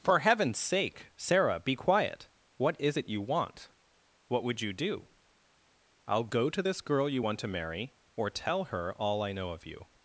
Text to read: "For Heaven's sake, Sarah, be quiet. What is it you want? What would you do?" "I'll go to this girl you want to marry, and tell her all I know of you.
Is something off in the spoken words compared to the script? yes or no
yes